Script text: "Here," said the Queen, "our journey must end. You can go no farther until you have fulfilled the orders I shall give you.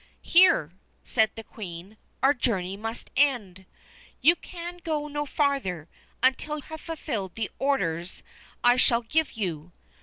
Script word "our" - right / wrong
right